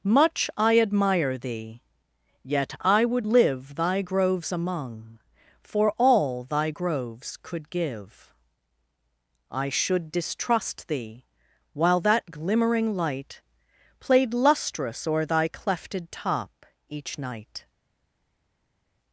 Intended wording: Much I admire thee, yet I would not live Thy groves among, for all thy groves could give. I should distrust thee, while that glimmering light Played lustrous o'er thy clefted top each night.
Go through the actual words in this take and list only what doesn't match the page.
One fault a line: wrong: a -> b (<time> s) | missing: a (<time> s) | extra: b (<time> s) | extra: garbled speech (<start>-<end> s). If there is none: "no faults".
missing: not (3.3 s)